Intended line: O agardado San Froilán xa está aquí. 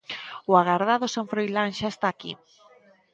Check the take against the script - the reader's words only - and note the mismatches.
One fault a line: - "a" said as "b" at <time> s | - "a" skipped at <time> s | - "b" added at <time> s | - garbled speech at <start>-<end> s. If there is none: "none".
none